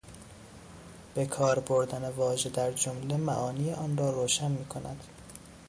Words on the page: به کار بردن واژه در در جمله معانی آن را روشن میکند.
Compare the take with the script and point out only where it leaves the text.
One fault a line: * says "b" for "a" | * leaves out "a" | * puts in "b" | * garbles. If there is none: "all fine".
* leaves out "در"